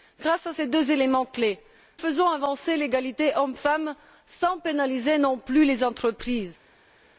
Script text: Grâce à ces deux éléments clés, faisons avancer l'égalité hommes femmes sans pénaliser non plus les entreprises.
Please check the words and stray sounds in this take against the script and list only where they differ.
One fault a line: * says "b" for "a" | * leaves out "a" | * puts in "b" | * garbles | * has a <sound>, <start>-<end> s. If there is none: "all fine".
all fine